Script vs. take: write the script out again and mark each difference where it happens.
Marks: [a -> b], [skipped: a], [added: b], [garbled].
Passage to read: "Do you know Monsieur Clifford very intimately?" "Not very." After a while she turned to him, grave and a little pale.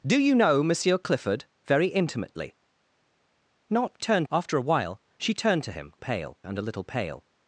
"Do you know Monsieur Clifford very intimately?" "Not [very." -> turned] After a while she turned to him, [grave -> pale] and a little pale.